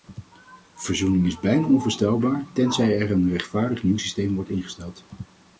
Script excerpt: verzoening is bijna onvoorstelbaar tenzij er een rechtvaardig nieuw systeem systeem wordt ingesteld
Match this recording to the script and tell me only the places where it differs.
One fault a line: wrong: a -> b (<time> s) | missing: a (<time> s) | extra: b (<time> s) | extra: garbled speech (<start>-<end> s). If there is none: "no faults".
missing: systeem (4.3 s)